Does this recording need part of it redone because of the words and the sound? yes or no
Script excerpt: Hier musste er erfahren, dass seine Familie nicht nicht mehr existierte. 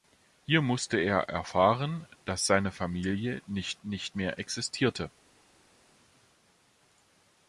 no